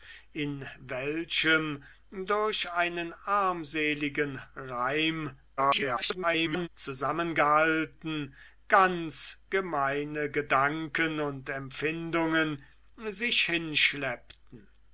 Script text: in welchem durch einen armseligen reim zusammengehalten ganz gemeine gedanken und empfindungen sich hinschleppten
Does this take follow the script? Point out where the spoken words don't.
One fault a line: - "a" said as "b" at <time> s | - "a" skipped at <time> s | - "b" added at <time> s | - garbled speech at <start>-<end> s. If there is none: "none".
- garbled speech at 5.6-6.7 s